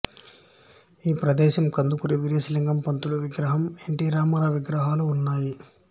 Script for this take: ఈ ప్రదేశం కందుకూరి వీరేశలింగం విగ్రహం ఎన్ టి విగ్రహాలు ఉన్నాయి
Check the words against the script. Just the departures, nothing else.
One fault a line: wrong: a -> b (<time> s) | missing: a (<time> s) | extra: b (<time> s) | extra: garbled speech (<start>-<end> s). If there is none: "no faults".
extra: పంతులు (2.8 s)
extra: రామారావు (4.1 s)